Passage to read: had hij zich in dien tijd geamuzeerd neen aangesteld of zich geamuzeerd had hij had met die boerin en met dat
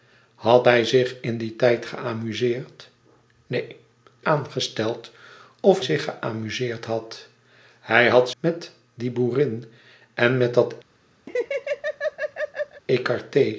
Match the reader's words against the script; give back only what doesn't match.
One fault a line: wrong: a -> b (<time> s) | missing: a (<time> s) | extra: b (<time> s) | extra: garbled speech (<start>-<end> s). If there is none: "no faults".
no faults